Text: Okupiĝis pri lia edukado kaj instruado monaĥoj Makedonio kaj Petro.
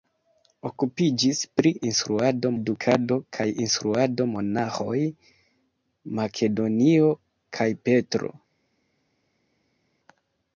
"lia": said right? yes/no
no